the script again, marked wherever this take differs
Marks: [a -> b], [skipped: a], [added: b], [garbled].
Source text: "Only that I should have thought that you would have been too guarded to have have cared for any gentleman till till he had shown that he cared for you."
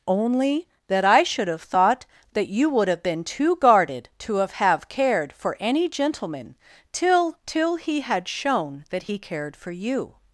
"Only that I should have thought that you would have been too guarded to have have cared for any gentleman till till he had shown that he cared for you."